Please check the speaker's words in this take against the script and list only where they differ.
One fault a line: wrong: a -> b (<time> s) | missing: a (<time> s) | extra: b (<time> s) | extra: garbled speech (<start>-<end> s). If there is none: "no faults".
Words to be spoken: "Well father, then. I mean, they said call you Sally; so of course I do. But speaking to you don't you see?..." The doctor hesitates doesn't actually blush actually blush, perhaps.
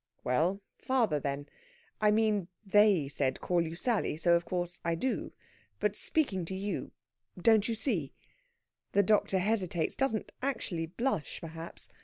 missing: actually blush (11.4 s)